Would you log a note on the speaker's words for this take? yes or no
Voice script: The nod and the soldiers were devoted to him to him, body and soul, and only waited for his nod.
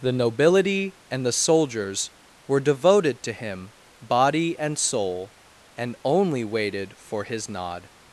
yes